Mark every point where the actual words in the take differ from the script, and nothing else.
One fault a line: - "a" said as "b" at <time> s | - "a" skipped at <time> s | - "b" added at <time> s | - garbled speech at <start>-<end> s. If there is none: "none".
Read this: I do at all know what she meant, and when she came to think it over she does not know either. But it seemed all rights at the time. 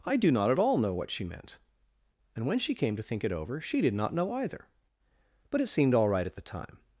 - "not" added at 0.3 s
- "does" said as "did" at 3.8 s
- "rights" said as "right" at 6.1 s